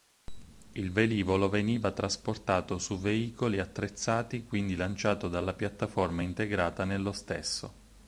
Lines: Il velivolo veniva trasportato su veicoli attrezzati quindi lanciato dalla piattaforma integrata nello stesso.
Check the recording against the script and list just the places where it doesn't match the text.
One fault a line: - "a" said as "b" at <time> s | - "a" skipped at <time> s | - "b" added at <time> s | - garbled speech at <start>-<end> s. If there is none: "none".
none